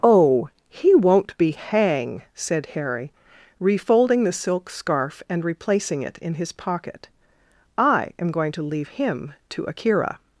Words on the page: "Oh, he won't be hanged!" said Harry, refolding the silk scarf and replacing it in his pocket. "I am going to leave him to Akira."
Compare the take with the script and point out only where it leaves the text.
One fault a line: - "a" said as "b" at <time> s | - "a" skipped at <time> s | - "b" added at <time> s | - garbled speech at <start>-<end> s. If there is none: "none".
- "hanged" said as "hang" at 1.5 s